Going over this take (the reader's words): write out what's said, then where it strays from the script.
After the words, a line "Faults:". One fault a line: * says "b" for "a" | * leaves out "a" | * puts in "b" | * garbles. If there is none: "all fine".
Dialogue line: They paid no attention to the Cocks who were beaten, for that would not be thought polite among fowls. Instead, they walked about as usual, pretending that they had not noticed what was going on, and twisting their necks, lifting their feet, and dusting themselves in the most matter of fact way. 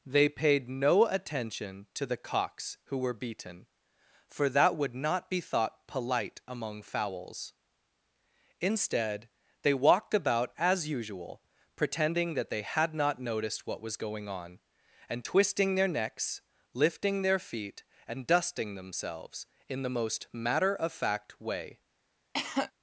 They paid no attention to the Cocks who were beaten, for that would not be thought polite among fowls. Instead, they walked about as usual, pretending that they had not noticed what was going on, and twisting their necks, lifting their feet, and dusting themselves in the most matter of fact way.
Faults:
all fine